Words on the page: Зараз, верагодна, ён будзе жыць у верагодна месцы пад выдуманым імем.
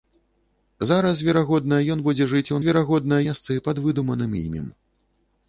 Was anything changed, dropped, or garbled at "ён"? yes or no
no